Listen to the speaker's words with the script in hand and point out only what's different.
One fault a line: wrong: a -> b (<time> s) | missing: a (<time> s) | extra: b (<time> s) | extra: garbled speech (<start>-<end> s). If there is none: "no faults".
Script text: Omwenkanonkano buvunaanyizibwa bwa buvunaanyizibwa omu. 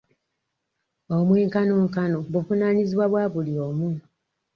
wrong: buvunaanyizibwa -> buli (3.3 s)